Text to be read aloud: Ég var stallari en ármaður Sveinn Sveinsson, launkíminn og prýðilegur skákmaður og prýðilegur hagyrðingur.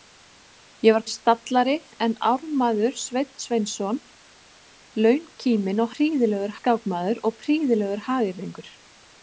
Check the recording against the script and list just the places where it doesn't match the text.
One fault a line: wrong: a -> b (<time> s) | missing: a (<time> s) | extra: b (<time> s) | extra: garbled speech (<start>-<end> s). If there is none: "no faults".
no faults